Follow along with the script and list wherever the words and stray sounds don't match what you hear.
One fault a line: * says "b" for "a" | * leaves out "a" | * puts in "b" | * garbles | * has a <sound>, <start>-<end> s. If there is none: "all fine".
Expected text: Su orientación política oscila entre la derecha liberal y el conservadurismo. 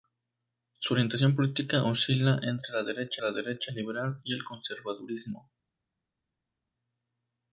* puts in "la derecha"